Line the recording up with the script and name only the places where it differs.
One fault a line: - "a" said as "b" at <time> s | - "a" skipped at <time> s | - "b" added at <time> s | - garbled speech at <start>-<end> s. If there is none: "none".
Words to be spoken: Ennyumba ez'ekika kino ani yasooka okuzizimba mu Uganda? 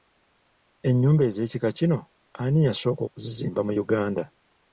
none